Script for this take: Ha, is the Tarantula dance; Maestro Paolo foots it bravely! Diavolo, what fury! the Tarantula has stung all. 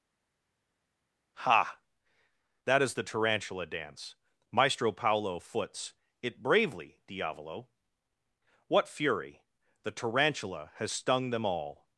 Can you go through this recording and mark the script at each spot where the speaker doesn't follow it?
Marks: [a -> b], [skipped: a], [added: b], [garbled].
Ha, [added: that] is the Tarantula dance; Maestro Paolo foots it bravely! Diavolo, what fury! the Tarantula has stung [added: them] all.